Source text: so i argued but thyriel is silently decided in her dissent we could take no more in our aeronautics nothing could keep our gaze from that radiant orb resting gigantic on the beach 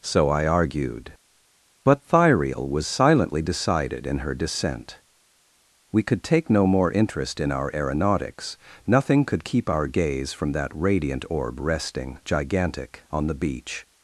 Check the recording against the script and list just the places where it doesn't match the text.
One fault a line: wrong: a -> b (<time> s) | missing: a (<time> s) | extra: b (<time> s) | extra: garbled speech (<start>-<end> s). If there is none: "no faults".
wrong: is -> was (2.7 s)
extra: interest (6.9 s)